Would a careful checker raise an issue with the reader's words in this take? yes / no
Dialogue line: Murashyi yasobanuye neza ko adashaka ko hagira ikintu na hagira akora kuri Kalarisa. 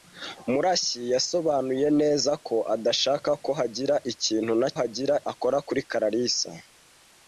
no